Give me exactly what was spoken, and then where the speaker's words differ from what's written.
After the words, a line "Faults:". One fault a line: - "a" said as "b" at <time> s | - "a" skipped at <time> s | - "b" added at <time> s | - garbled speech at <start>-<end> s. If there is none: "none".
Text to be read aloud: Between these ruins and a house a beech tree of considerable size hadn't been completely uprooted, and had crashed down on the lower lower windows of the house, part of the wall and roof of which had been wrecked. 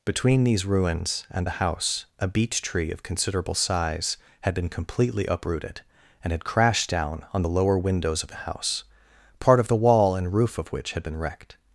Between these ruins and the house a beech tree of considerable size had been completely uprooted, and had crashed down on the lower windows of the house, part of the wall and roof of which had been wrecked.
Faults:
- "a" said as "the" at 1.4 s
- "hadn't" said as "had" at 4.4 s
- "lower" skipped at 7.8 s